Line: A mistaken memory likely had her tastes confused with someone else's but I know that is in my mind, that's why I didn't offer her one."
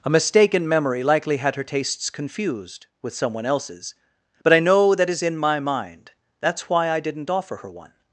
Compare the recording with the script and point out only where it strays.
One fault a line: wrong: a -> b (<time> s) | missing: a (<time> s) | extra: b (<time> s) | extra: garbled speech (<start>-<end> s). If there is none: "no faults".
no faults